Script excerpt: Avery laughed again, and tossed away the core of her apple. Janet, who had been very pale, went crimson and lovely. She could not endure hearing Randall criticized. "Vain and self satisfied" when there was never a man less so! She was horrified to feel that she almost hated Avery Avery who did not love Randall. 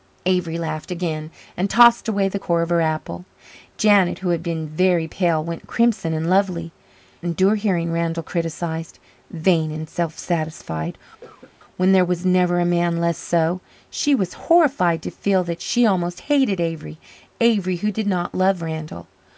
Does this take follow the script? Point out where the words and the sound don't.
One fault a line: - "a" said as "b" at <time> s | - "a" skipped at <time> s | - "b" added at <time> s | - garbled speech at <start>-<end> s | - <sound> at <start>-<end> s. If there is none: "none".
- "She could not" skipped at 6.7 s
- cough at 11.2-11.6 s